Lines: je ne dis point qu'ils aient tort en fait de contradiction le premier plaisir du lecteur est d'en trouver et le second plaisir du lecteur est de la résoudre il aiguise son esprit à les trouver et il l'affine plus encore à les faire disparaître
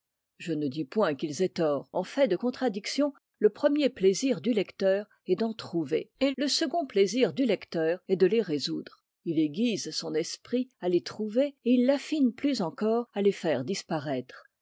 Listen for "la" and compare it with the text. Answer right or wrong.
wrong